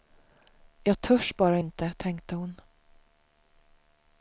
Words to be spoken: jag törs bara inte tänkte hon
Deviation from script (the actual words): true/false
false